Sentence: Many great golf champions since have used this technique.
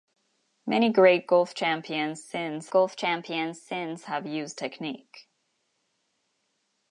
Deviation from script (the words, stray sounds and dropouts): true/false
true